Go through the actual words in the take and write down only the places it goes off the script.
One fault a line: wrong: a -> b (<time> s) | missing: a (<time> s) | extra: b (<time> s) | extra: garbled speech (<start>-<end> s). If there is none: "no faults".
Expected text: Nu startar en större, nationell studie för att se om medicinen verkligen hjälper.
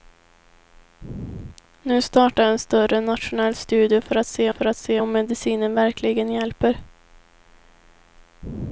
extra: för att se (4.5 s)